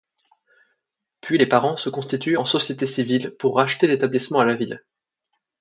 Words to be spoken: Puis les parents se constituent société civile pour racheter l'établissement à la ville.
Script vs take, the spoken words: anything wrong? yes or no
yes